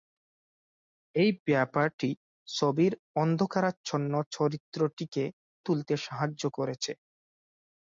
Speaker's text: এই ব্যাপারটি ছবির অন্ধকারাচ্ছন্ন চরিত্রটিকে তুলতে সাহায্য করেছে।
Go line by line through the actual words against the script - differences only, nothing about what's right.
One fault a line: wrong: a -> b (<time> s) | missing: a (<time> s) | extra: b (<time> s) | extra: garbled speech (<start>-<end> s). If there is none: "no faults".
no faults